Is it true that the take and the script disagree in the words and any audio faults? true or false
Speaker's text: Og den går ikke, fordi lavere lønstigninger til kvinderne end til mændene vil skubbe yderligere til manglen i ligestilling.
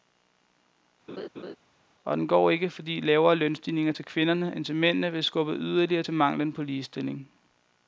true